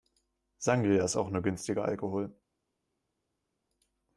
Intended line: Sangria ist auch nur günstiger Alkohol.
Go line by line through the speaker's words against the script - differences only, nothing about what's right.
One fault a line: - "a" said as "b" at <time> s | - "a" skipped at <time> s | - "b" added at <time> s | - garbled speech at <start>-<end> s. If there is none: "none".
none